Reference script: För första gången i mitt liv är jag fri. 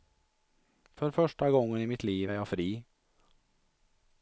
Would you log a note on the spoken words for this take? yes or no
no